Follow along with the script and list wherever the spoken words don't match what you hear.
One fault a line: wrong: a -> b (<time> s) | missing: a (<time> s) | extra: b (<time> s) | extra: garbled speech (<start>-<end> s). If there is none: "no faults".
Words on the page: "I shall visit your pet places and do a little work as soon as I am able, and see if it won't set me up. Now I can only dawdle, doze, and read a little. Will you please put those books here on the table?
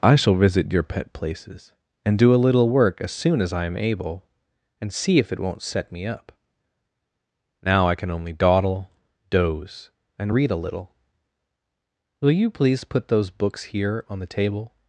no faults